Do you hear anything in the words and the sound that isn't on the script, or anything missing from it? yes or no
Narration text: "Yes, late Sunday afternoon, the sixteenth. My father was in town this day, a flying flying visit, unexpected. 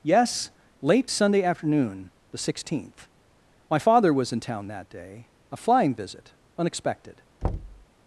yes